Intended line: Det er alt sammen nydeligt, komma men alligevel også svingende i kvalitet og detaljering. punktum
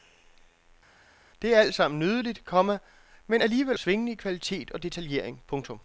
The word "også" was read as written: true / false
false